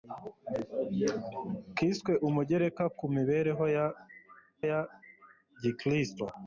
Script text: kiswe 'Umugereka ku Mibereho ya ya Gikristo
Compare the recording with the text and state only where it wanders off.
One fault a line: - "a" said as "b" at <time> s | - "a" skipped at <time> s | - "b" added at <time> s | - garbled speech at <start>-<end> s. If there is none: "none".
none